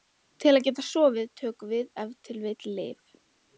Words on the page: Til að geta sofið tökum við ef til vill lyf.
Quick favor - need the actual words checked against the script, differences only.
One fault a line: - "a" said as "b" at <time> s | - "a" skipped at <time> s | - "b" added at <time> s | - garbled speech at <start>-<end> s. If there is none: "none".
none